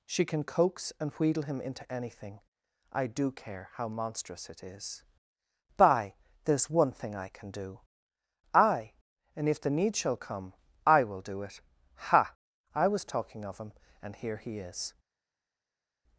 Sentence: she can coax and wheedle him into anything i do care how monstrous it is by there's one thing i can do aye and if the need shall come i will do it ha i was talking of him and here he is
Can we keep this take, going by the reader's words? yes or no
yes